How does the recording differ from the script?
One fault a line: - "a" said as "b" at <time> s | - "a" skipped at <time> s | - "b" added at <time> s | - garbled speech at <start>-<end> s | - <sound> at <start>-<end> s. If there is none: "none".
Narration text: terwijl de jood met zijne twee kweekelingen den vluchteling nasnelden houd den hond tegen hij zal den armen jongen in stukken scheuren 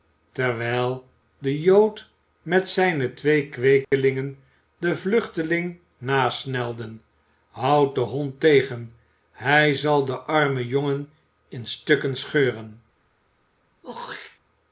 - dropout at 3.8-3.9 s
- throat clearing at 13.8-14.4 s